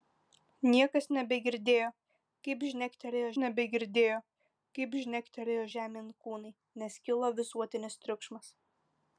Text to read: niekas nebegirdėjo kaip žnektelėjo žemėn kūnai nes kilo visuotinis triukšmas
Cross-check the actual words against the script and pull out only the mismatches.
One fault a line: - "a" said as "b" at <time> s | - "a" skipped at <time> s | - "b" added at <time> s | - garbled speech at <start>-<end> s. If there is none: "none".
- "nebegirdėjo kaip žnektelėjo" added at 3.4 s